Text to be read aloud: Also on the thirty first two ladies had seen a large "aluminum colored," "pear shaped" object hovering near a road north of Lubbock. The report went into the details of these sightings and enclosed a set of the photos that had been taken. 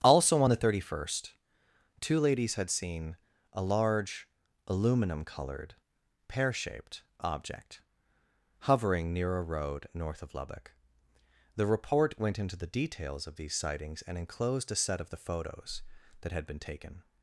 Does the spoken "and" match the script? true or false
true